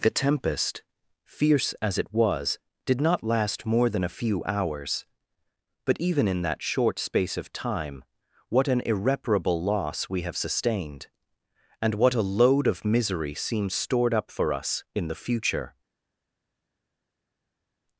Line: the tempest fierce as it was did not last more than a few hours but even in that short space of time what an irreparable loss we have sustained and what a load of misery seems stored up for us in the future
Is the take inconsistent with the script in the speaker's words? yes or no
no